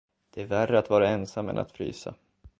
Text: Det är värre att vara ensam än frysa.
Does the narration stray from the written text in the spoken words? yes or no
yes